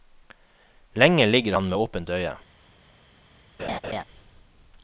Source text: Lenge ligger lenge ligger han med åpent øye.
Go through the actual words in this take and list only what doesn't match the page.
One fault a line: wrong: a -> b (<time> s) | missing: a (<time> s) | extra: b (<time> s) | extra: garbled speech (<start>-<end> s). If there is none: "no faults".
missing: lenge ligger (1.6 s)